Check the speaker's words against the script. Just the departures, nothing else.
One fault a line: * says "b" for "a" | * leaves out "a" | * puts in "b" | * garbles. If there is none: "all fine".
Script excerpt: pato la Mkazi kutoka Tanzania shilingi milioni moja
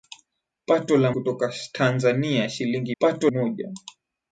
* leaves out "Mkazi"
* says "pato" for "milioni"